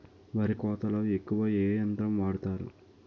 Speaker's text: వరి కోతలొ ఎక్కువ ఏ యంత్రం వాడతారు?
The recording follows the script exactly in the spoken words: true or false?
true